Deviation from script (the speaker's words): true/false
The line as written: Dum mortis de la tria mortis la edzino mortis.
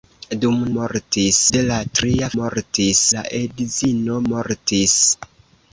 false